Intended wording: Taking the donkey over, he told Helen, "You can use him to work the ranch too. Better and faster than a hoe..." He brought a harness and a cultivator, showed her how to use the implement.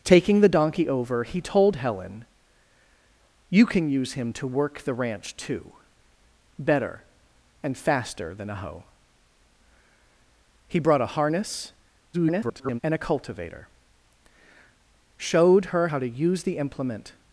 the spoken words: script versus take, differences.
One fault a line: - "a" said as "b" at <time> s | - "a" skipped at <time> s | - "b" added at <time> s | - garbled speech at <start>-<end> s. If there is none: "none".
- garbled speech at 12.1-12.8 s